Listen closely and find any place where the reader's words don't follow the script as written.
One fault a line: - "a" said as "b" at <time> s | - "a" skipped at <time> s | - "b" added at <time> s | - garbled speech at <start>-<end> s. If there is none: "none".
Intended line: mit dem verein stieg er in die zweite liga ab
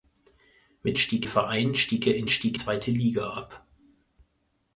- "dem" said as "stieg" at 1.0 s
- "die" said as "stieg" at 2.3 s